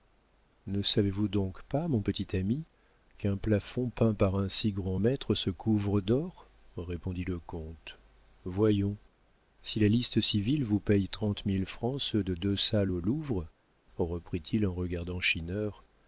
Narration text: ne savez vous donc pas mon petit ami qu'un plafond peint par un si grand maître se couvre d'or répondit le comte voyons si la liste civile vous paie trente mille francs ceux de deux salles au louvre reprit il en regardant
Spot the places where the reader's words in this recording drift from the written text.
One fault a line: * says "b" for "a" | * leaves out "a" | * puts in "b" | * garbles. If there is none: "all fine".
all fine